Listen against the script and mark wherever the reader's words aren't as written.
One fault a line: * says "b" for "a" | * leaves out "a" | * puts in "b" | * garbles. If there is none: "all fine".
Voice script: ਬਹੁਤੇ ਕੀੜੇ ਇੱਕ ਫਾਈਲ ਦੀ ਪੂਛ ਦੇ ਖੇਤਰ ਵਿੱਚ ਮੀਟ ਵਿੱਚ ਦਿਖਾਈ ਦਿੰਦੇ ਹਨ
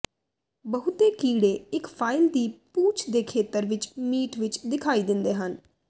all fine